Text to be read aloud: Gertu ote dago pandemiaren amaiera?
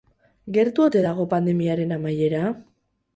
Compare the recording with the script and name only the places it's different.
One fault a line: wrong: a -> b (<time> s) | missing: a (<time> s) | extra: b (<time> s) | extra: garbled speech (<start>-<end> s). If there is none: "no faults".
no faults